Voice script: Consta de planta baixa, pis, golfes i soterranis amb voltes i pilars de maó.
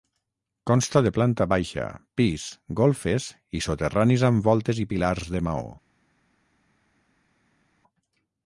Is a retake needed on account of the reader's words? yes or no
no